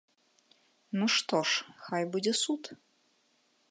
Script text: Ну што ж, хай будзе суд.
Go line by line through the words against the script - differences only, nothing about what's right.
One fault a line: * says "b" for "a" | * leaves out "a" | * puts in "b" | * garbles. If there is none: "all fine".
all fine